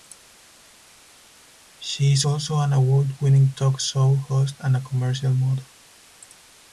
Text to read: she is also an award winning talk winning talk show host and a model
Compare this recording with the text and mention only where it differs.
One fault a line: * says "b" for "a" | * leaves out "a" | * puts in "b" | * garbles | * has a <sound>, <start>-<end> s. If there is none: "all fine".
* leaves out "winning talk"
* puts in "commercial"